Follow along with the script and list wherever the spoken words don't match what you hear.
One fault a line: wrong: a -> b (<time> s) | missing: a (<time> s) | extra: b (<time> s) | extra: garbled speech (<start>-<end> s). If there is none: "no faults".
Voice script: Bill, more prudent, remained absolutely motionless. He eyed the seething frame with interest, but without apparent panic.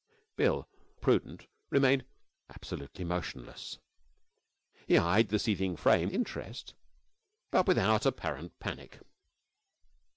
missing: more (0.7 s)
missing: with (6.1 s)